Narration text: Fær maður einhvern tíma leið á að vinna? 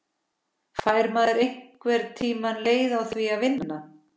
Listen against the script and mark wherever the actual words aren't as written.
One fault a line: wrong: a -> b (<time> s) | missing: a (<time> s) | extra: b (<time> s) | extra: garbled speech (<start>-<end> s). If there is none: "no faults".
extra: því (3.2 s)